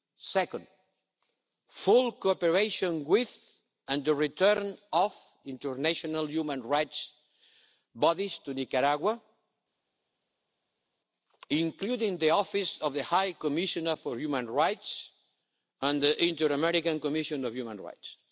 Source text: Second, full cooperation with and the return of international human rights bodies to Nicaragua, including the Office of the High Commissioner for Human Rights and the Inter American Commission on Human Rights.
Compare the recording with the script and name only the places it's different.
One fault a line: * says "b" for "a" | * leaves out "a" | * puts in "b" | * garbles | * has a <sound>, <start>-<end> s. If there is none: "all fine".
all fine